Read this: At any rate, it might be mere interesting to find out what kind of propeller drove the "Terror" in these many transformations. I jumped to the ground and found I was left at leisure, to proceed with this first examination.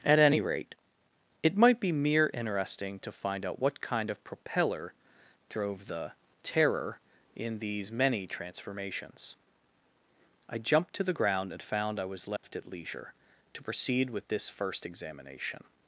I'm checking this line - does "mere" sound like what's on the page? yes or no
yes